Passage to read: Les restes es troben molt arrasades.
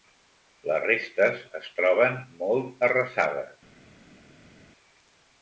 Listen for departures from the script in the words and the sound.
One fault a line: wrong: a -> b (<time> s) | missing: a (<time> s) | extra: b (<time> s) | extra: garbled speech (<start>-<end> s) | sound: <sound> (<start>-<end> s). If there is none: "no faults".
no faults